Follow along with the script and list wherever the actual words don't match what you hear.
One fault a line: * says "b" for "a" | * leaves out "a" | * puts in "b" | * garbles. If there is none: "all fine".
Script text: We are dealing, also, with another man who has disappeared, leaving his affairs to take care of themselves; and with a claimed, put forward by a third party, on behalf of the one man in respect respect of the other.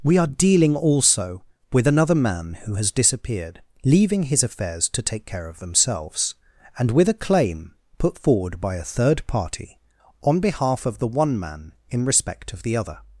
* says "claim" for "claimed"
* leaves out "respect"